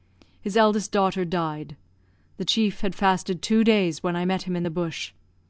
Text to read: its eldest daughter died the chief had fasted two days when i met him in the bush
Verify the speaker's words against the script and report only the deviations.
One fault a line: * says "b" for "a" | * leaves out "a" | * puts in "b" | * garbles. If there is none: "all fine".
* says "his" for "its"